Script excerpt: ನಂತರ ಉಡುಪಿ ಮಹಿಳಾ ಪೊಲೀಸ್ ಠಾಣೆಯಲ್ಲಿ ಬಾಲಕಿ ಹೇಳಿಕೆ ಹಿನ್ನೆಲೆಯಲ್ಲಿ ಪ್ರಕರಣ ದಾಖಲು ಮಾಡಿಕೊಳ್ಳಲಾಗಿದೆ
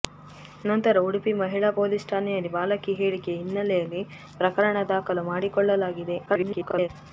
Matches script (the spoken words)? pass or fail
fail